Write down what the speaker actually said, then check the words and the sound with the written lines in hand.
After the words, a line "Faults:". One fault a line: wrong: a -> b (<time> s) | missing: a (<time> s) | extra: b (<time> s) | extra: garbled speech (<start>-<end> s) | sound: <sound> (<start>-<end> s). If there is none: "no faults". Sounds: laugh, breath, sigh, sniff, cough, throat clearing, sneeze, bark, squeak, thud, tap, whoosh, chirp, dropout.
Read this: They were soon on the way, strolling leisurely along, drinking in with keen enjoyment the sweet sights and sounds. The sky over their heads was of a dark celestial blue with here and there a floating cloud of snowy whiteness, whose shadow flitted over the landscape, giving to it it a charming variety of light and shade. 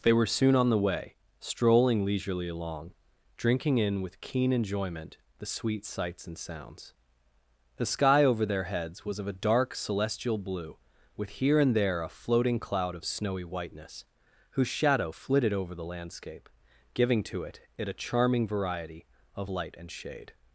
They were soon on the way, strolling leisurely along, drinking in with keen enjoyment the sweet sights and sounds. The sky over their heads was of a dark celestial blue with here and there a floating cloud of snowy whiteness, whose shadow flitted over the landscape, giving to it it a charming variety of light and shade.
Faults:
no faults